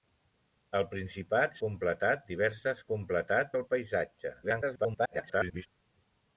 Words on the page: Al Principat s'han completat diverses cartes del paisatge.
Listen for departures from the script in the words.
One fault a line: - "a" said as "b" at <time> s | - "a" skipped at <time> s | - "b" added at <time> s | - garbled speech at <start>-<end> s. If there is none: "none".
- "s'han" skipped at 1.6 s
- "cartes" said as "completat" at 2.9 s
- garbled speech at 4.4-5.7 s